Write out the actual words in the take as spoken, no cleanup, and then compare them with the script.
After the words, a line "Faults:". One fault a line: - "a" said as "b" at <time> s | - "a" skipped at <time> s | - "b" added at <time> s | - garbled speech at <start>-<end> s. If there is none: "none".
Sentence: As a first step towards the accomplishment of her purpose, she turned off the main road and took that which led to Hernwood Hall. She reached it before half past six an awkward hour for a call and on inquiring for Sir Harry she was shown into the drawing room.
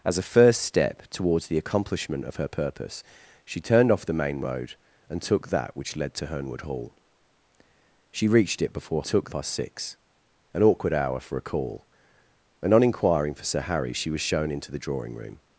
As a first step towards the accomplishment of her purpose, she turned off the main road and took that which led to Hernwood Hall. She reached it before took past six an awkward hour for a call and on inquiring for Sir Harry she was shown into the drawing room.
Faults:
- "half" said as "took" at 9.0 s